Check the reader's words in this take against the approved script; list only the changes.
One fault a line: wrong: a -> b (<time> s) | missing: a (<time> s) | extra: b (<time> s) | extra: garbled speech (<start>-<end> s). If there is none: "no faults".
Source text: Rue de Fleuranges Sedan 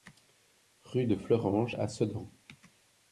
extra: à (1.7 s)